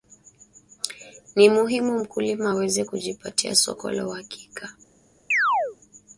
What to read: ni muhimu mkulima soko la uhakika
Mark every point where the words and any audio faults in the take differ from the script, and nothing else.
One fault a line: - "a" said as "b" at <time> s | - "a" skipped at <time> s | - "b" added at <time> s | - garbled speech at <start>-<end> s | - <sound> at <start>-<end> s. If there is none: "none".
- "aweze kujipatia" added at 2.5 s
- chirp at 5.3-5.8 s